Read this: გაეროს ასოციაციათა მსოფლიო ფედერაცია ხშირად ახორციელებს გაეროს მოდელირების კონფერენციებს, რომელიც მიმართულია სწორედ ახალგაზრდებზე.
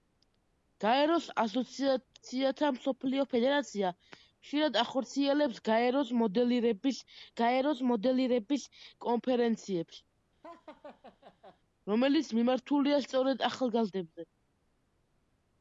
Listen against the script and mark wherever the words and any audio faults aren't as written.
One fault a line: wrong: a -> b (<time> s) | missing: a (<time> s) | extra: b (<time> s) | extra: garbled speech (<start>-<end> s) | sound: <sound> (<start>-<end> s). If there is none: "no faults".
extra: გაეროს მოდელირების (7.4 s)
sound: laugh (10.4-11.6 s)